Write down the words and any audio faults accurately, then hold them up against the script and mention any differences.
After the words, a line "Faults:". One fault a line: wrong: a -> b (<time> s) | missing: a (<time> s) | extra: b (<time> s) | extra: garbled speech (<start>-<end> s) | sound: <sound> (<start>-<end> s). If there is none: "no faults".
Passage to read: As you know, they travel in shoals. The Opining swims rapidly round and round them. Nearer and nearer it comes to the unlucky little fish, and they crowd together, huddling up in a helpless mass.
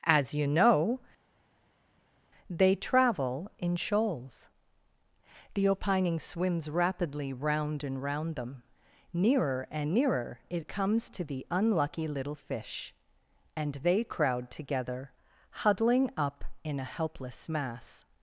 As you know, they travel in shoals. The Opining swims rapidly round and round them. Nearer and nearer it comes to the unlucky little fish, and they crowd together, huddling up in a helpless mass.
Faults:
no faults